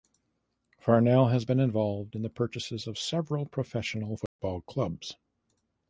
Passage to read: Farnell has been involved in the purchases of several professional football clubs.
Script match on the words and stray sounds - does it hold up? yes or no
no